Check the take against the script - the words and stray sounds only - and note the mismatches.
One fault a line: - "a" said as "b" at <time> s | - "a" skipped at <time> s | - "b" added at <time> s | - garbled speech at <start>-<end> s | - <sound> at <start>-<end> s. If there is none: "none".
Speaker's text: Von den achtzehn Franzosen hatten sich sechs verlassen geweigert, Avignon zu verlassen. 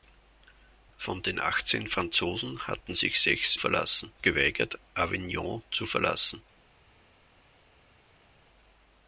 none